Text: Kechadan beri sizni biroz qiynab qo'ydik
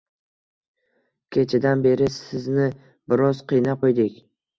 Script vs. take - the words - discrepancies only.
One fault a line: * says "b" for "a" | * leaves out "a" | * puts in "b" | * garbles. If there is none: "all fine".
all fine